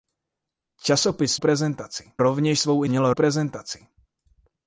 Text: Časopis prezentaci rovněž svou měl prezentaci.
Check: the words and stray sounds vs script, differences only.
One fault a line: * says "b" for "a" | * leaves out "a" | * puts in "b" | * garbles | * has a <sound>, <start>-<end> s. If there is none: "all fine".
all fine